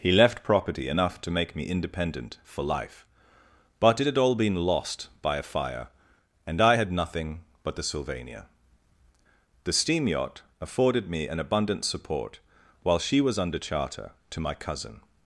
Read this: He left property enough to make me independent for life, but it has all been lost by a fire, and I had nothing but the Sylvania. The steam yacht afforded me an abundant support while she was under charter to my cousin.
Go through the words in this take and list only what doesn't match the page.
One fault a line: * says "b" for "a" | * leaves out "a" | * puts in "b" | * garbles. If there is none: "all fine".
* says "had" for "has"